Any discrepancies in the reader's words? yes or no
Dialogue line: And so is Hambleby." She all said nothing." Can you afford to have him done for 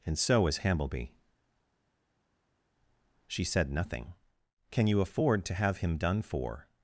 yes